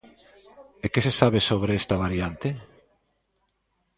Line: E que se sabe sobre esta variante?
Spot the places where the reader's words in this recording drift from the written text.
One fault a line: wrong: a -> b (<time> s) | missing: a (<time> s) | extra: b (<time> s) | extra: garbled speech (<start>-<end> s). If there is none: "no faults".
no faults